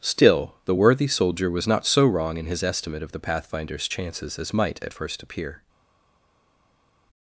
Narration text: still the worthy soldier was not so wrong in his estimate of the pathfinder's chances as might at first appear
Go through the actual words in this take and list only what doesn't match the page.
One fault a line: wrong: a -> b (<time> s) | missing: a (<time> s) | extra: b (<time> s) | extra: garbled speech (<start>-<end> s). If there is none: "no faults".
no faults